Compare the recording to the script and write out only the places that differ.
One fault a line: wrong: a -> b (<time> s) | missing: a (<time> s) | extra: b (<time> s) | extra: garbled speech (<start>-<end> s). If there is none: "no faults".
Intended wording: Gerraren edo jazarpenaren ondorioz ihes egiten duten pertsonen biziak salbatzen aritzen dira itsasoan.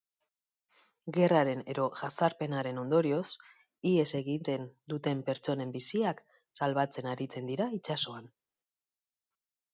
no faults